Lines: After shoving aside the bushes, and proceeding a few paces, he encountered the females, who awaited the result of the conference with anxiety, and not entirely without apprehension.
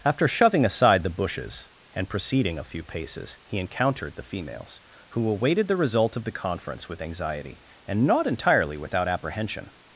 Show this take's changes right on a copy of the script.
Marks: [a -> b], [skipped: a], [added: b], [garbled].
After shoving aside the bushes, and proceeding a few paces, he encountered the females, who awaited the result of the conference with anxiety, and not entirely without apprehension.